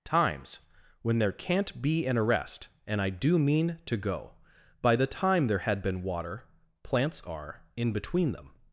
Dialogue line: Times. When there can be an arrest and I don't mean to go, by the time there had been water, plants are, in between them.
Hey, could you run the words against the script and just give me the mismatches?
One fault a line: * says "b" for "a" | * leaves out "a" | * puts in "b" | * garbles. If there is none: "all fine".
* says "can't" for "can"
* says "do" for "don't"